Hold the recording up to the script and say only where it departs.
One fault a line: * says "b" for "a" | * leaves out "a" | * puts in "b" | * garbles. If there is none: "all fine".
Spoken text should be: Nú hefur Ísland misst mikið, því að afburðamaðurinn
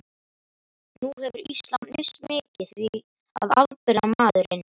all fine